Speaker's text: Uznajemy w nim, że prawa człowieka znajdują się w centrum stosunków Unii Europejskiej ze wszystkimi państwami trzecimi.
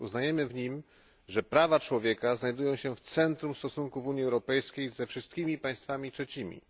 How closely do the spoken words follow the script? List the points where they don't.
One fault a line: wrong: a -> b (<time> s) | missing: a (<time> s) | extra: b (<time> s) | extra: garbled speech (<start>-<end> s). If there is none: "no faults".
no faults